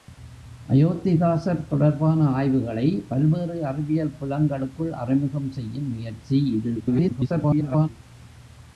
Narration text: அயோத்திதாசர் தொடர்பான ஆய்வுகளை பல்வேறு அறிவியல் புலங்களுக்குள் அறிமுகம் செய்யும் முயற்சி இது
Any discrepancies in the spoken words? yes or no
yes